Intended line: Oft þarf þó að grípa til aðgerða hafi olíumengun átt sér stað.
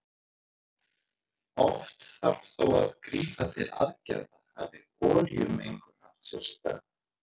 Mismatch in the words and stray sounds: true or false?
false